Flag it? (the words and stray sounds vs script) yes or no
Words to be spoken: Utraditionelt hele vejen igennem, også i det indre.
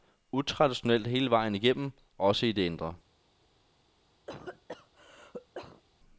yes